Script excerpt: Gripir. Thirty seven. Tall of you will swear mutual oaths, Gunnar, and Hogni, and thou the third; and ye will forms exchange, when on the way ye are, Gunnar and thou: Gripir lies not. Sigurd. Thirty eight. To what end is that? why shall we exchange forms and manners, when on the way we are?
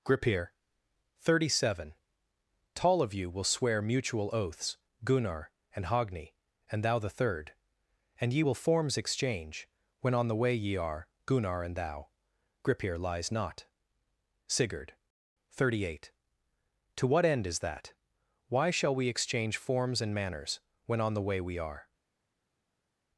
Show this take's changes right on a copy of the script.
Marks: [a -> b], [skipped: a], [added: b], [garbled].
Gripir. Thirty seven. Tall of you will swear mutual oaths, Gunnar, and Hogni, and thou the third; and ye will forms exchange, when on the way ye are, Gunnar and thou: Gripir lies not. Sigurd. Thirty eight. To what end is that? why shall we exchange forms and manners, when on the way we are?